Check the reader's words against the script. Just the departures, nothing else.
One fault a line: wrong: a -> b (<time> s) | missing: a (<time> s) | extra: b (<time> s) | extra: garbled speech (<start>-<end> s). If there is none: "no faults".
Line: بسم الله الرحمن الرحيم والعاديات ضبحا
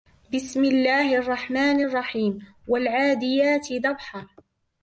no faults